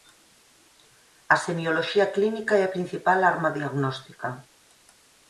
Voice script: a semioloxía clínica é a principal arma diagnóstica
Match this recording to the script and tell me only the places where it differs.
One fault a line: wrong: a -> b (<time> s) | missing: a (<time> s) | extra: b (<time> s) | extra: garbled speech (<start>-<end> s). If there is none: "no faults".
no faults